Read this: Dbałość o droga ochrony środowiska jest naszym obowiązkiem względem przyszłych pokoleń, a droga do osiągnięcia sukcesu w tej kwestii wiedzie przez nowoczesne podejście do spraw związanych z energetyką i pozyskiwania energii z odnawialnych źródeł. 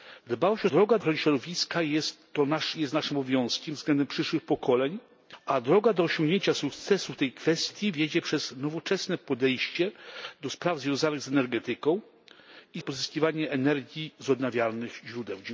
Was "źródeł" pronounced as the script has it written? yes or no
yes